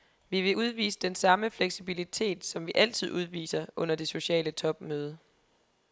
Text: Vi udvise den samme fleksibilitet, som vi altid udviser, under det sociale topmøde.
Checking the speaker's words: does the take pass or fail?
fail